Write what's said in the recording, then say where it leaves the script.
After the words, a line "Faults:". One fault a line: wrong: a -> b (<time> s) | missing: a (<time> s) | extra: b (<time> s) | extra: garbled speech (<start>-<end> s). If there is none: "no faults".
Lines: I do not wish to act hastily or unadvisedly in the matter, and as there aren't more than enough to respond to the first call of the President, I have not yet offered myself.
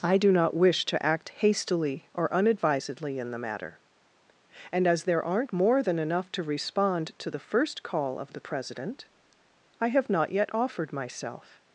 I do not wish to act hastily or unadvisedly in the matter, and as there aren't more than enough to respond to the first call of the President, I have not yet offered myself.
Faults:
no faults